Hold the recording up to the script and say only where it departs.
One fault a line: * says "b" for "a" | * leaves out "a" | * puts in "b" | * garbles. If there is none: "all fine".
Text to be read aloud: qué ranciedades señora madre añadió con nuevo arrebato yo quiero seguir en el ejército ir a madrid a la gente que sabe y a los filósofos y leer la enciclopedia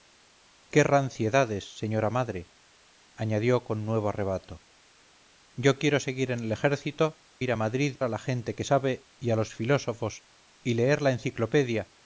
all fine